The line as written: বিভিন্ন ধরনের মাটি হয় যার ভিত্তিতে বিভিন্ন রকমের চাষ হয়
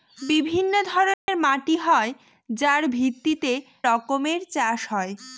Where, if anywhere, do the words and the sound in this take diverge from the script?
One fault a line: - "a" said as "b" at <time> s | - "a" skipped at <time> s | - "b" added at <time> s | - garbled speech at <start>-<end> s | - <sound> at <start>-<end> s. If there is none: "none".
- dropout at 1.1-1.3 s
- "বিভিন্ন" skipped at 3.5 s